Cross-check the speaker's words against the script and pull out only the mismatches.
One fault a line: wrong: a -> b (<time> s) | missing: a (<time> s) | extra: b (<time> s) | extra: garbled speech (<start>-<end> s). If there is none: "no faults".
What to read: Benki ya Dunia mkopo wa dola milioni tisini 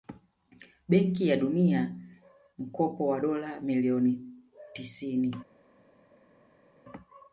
no faults